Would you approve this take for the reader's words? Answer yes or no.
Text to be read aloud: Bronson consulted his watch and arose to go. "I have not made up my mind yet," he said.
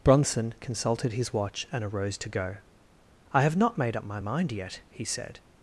yes